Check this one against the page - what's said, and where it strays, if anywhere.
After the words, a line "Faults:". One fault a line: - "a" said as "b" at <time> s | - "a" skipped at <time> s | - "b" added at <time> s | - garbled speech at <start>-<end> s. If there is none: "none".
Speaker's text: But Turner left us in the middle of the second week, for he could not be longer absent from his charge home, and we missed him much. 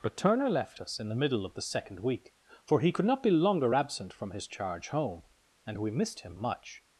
But Turner left us in the middle of the second week, for he could not be longer absent from his charge home, and we missed him much.
Faults:
none